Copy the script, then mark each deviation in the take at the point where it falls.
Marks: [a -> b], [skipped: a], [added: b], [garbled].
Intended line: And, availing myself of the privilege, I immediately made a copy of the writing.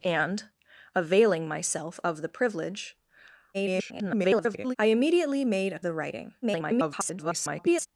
And, availing myself of the privilege, [garbled] I immediately made a [skipped: copy of] the writing. [garbled]